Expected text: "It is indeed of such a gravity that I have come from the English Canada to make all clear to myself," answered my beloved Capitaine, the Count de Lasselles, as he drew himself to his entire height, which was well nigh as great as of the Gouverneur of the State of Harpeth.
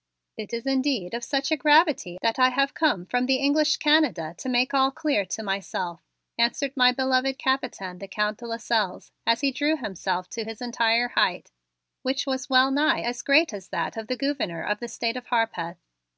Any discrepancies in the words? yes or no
yes